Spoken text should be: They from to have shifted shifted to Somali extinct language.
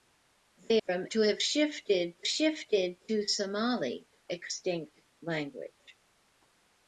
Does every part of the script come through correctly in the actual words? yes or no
yes